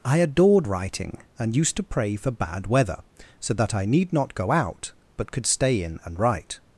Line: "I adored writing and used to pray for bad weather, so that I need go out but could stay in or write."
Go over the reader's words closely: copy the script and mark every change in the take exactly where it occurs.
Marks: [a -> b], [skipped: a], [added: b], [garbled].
"I adored writing and used to pray for bad weather, so that I need [added: not] go out but could stay in [or -> and] write."